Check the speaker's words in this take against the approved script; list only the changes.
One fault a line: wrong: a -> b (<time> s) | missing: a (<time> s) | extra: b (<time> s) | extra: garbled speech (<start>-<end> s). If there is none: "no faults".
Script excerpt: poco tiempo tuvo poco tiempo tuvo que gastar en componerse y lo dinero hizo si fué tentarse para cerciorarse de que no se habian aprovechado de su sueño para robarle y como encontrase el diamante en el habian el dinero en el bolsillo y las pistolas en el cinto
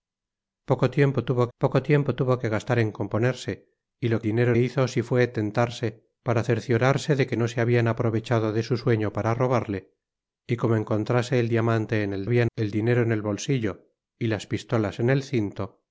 no faults